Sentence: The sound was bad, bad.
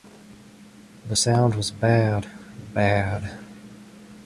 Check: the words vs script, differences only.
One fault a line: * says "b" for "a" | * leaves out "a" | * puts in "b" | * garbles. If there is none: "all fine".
all fine